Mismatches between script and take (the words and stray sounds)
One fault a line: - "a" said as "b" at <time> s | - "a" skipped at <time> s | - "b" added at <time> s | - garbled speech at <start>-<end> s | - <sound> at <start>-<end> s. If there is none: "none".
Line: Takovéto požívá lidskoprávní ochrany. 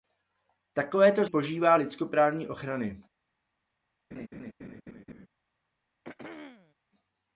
- laugh at 4.1-5.3 s
- throat clearing at 6.0-6.7 s